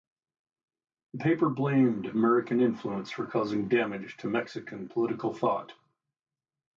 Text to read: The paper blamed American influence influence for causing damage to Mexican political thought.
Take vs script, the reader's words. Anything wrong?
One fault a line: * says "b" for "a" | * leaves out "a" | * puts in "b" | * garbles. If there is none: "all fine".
* leaves out "influence"